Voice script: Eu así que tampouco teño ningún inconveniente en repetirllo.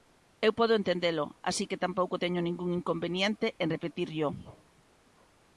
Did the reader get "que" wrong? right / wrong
right